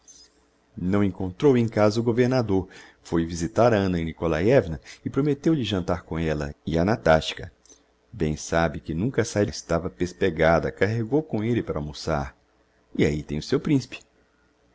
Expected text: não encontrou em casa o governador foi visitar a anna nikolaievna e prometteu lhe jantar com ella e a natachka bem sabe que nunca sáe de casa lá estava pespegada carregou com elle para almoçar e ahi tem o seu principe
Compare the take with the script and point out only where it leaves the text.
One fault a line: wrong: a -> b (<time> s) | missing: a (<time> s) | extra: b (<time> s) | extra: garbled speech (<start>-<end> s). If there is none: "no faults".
missing: de casa lá (9.4 s)